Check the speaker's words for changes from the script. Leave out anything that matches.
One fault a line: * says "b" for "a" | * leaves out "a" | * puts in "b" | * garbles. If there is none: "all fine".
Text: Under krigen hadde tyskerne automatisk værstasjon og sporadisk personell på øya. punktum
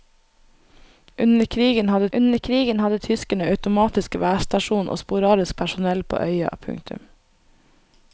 * puts in "under krigen hadde"